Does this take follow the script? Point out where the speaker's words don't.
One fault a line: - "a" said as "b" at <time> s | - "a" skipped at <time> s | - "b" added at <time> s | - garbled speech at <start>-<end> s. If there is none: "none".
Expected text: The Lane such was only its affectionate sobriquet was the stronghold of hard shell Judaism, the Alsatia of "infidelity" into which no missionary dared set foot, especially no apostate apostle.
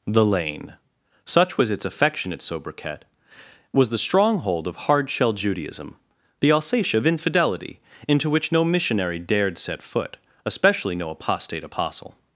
- "only" skipped at 1.7 s